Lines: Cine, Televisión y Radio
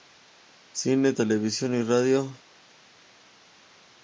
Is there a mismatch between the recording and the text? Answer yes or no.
no